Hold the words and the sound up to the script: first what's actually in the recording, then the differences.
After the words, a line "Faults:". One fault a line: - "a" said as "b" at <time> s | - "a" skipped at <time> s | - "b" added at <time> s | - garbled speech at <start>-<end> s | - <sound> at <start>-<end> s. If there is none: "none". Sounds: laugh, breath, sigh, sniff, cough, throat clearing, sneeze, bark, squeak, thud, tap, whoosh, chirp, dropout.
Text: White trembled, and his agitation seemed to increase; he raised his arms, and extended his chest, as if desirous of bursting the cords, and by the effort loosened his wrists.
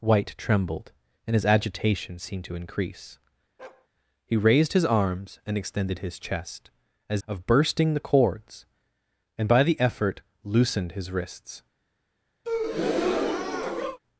White trembled, and his agitation seemed to increase; he raised his arms, and extended his chest, as of bursting the cords, and by the effort loosened his wrists.
Faults:
- bark at 3.6-3.9 s
- "if desirous" skipped at 7.2 s
- breath at 12.4-14.0 s